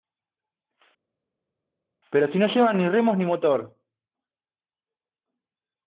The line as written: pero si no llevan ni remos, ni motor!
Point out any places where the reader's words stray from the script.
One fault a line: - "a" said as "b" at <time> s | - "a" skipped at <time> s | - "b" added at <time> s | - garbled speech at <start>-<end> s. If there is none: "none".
none